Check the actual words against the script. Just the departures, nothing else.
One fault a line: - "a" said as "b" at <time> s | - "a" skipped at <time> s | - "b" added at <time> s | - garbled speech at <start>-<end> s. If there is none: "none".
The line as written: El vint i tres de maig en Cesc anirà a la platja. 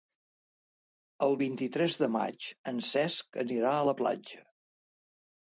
none